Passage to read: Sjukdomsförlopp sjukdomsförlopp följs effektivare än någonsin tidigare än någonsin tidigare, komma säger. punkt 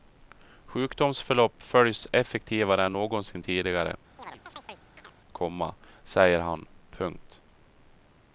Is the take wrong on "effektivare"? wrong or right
right